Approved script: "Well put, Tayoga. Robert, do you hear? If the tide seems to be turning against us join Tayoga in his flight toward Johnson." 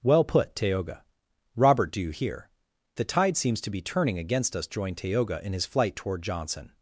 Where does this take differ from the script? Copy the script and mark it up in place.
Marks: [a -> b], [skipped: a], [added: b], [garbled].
"Well put, Tayoga. Robert, do you hear? [skipped: If] the tide seems to be turning against us join Tayoga in his flight toward Johnson."